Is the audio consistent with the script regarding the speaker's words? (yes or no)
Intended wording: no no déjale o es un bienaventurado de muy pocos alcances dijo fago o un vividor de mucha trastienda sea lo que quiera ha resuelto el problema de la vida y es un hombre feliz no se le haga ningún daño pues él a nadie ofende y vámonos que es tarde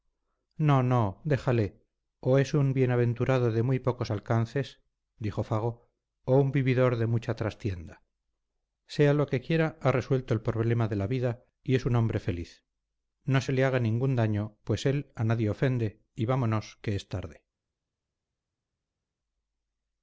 yes